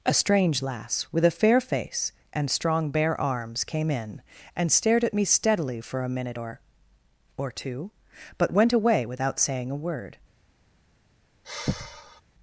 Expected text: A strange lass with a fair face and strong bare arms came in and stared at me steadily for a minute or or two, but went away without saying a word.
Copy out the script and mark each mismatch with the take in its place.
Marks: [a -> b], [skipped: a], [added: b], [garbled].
A strange lass with a fair face and strong bare arms came in and stared at me steadily for a minute or or two, but went away without saying a word.